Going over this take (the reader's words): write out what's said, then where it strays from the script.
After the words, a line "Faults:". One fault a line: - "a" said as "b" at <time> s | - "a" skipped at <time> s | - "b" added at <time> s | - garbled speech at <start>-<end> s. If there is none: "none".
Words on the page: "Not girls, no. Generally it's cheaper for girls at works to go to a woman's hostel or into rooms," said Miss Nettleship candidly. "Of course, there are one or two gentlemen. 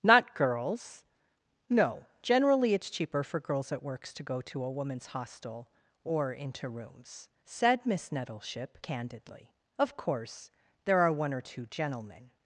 "Not girls, no. Generally it's cheaper for girls at works to go to a woman's hostel or into rooms," said Miss Nettleship candidly. "Of course, there are one or two gentlemen.
Faults:
none